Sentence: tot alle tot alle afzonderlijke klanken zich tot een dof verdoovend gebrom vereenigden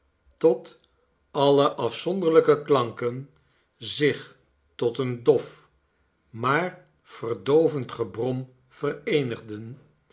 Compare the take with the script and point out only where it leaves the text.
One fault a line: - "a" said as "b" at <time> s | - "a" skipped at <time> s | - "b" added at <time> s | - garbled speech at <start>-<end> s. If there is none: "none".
- "tot alle" skipped at 1.7 s
- "maar" added at 6.3 s